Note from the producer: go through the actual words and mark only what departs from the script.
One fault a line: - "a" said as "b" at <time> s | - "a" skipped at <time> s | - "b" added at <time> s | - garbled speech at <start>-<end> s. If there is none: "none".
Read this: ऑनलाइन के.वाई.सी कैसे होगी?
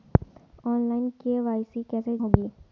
none